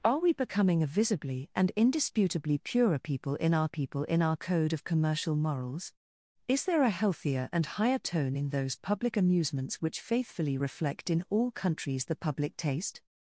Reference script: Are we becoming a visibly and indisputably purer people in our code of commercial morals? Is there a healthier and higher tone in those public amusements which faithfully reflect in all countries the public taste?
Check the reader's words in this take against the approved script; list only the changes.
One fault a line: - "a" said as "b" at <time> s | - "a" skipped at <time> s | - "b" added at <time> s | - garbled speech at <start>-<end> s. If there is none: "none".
- "people in our" added at 3.7 s